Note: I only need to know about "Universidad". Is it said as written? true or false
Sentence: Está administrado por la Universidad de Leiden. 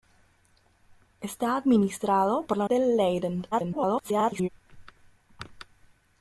false